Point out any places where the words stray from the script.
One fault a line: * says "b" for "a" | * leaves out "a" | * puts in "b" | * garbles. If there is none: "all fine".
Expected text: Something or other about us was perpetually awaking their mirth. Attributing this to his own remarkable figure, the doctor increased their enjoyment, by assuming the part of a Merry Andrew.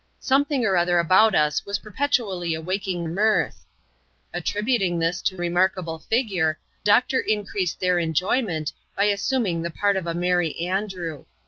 * leaves out "their"
* leaves out "his own"
* leaves out "the"